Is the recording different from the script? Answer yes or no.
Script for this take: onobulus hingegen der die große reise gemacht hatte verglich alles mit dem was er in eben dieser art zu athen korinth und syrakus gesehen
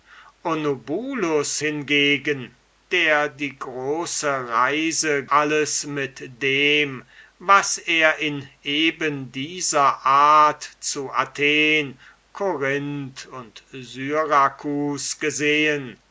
yes